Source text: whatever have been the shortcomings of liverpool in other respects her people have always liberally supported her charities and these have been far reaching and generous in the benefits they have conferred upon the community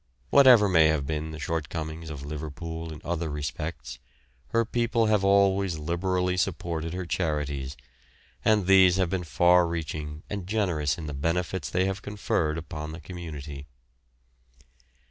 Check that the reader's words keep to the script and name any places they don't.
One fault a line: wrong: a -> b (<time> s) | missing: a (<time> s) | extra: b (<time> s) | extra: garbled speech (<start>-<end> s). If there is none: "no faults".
extra: may (0.7 s)